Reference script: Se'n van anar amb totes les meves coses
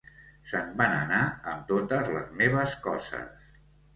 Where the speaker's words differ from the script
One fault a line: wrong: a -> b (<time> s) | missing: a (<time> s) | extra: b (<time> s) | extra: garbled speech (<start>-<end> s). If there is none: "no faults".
no faults